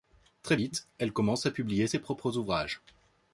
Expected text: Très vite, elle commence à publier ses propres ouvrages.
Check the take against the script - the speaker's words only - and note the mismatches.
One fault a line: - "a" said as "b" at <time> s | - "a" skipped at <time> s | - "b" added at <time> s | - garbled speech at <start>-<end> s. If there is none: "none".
none